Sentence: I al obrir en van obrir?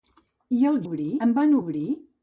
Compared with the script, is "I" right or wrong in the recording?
right